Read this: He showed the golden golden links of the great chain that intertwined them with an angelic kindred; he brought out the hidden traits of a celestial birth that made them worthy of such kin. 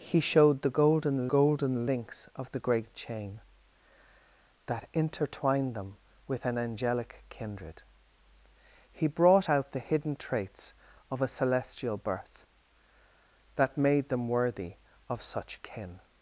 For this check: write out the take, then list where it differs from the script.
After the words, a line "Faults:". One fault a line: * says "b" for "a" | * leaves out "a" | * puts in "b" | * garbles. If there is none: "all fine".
He showed the golden golden links of the great chain that intertwined them with an angelic kindred; he brought out the hidden traits of a celestial birth that made them worthy of such kin.
Faults:
all fine